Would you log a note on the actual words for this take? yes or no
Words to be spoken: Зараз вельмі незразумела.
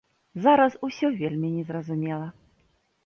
yes